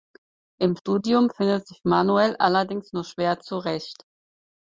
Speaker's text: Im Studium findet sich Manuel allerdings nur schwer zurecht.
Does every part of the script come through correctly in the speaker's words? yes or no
yes